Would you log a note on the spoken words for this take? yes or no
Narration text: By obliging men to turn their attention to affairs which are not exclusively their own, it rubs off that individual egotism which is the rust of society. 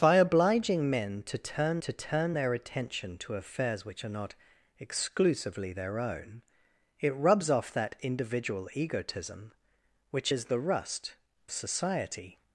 yes